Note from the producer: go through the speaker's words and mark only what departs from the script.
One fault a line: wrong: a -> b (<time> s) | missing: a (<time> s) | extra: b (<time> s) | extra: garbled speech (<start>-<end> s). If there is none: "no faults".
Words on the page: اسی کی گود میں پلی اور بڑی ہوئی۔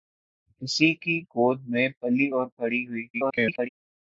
extra: garbled speech (3.1-3.7 s)